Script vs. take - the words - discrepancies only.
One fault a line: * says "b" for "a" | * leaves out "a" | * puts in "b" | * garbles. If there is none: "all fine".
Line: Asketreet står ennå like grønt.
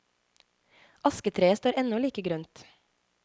all fine